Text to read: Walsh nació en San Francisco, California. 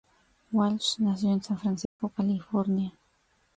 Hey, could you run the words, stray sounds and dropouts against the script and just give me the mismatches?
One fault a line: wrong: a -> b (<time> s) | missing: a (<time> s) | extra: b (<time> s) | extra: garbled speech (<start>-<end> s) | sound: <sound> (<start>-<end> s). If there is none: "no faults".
sound: dropout (1.9-2.0 s)